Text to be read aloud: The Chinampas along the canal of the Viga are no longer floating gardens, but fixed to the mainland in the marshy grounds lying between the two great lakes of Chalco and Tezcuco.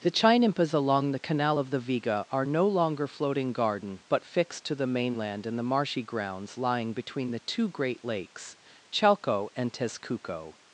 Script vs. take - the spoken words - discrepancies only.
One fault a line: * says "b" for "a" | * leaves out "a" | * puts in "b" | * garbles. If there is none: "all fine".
* says "garden" for "gardens"
* leaves out "of"